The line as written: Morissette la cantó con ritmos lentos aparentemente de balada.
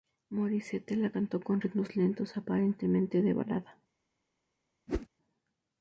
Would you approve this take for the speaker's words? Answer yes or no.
yes